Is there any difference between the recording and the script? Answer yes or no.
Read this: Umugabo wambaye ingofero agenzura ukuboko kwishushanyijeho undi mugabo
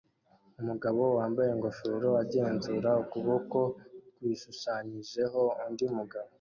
no